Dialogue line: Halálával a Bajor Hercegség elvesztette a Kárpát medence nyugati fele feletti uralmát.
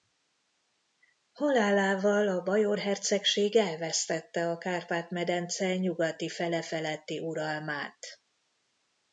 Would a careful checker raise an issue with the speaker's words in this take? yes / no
no